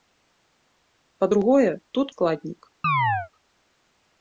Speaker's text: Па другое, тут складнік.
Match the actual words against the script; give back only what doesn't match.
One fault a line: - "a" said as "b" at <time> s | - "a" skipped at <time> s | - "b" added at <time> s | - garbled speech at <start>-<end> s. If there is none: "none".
none